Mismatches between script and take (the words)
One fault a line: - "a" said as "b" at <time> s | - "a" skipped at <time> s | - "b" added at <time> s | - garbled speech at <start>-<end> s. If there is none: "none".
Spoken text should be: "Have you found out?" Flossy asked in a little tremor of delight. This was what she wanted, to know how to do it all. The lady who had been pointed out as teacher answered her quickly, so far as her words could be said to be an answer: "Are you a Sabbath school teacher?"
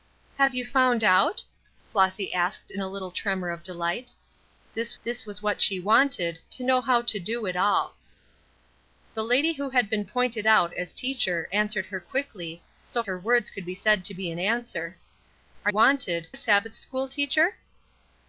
- "this" added at 5.0 s
- "far as" skipped at 13.0 s
- "you" said as "wanted" at 15.7 s